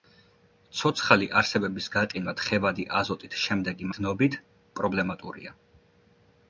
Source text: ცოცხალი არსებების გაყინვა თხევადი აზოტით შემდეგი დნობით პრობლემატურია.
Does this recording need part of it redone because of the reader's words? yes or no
no